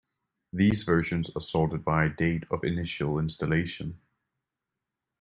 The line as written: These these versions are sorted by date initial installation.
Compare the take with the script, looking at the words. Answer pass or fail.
fail